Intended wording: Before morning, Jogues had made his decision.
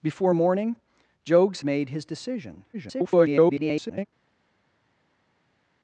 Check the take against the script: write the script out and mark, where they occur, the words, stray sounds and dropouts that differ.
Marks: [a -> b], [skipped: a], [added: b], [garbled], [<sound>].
Before morning, Jogues [skipped: had] made his decision. [garbled]